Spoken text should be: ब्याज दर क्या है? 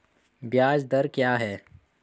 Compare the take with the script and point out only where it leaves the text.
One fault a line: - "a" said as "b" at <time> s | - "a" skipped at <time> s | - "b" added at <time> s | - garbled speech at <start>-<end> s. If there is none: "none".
none